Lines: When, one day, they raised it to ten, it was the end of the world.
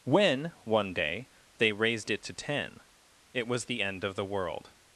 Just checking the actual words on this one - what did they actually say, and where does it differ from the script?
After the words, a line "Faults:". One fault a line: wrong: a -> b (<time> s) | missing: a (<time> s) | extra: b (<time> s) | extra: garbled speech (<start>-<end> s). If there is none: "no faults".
When, one day, they raised it to ten, it was the end of the world.
Faults:
no faults